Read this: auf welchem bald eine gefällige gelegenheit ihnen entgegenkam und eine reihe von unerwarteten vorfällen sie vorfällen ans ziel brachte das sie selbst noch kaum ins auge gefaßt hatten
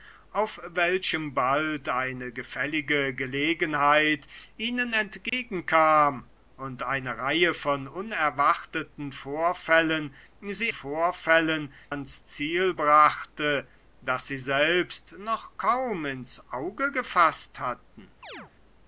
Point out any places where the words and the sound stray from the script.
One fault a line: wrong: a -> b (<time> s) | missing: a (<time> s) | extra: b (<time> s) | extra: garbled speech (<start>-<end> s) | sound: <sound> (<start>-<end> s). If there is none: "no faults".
sound: dropout (5.3-5.3 s)
sound: chirp (18.2-18.5 s)